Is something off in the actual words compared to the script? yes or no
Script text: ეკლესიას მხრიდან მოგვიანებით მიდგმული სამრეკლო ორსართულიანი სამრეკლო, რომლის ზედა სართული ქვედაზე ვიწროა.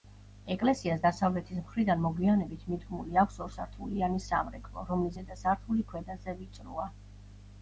yes